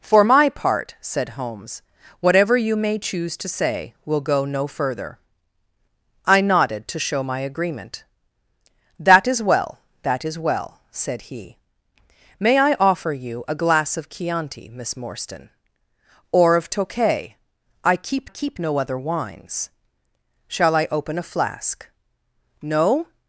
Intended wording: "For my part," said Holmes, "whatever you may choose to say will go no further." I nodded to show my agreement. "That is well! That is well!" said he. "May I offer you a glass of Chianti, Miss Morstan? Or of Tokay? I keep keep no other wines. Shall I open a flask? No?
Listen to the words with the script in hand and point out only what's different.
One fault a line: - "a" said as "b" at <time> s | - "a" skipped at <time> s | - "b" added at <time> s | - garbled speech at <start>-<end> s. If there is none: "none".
none